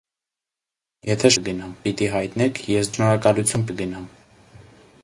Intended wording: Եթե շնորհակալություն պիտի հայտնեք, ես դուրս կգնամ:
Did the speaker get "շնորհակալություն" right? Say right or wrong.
wrong